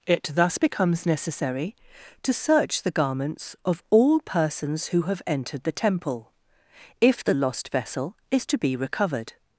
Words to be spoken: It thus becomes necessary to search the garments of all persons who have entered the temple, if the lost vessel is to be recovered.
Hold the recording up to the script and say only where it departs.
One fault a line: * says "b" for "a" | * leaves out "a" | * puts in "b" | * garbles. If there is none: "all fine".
all fine